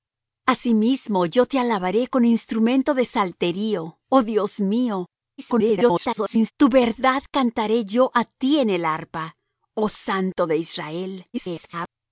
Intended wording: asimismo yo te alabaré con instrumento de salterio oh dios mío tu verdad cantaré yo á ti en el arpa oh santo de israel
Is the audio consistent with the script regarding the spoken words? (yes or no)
no